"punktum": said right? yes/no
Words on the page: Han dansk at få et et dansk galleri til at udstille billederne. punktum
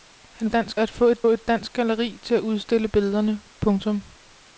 yes